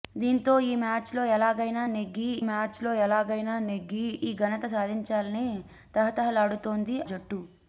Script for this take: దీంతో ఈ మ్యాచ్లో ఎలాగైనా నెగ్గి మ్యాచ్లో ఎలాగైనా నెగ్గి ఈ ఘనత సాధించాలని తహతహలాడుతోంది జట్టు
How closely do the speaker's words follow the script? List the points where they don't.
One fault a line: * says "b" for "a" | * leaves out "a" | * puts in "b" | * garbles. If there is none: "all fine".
all fine